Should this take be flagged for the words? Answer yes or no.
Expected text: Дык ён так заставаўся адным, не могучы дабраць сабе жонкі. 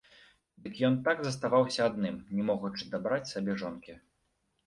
no